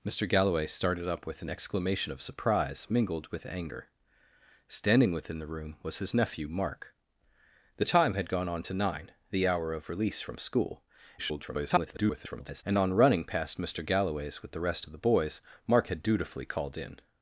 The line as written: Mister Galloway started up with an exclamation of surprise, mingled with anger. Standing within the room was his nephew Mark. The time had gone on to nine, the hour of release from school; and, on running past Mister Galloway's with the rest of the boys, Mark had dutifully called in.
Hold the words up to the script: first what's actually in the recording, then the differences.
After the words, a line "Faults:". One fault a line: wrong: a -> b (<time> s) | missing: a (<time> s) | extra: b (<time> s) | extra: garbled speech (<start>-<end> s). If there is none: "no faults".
Mister Galloway started up with an exclamation of surprise, mingled with anger. Standing within the room was his nephew Mark. The time had gone on to nine, the hour of release from school; [garbled] and, on running past Mister Galloway's with the rest of the boys, Mark had dutifully called in.
Faults:
extra: garbled speech (11.2-12.6 s)